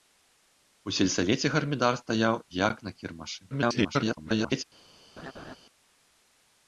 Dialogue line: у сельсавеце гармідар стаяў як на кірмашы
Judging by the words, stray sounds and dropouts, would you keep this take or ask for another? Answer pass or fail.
fail